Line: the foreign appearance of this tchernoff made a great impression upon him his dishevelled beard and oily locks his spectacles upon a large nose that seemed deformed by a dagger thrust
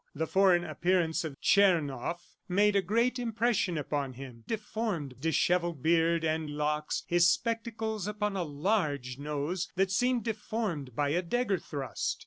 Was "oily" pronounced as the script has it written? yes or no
no